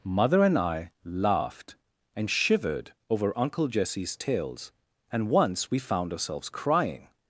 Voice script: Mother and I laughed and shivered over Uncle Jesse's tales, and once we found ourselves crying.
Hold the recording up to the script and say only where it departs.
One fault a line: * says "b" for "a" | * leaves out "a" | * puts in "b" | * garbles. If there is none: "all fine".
all fine